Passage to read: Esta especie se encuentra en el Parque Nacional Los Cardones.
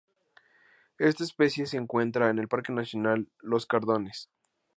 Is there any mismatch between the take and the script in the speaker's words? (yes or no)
no